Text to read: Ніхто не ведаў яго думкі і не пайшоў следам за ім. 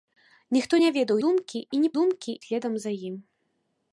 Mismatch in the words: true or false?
true